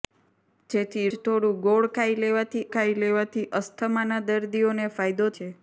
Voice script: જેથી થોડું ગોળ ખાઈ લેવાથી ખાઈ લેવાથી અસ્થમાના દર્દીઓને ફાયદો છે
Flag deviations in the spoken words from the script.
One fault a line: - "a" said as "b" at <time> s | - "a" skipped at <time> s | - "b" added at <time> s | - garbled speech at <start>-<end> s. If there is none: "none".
none